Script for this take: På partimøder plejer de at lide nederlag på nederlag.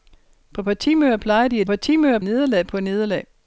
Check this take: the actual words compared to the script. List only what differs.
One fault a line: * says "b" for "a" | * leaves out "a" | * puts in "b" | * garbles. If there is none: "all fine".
* says "partimøder" for "lide"